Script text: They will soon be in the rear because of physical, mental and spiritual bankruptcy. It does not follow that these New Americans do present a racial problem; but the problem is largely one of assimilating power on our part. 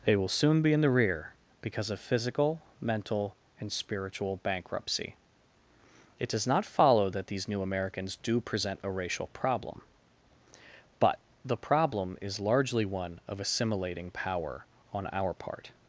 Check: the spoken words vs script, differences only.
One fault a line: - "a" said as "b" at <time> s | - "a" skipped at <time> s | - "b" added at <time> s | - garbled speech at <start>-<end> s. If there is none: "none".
none